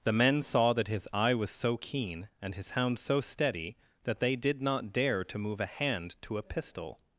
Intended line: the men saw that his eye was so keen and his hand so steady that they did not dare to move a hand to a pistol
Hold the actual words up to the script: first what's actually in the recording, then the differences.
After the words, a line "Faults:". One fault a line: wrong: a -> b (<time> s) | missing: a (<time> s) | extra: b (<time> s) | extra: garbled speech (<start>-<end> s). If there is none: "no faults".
the men saw that his eye was so keen and his hound so steady that they did not dare to move a hand to a pistol
Faults:
wrong: hand -> hound (2.7 s)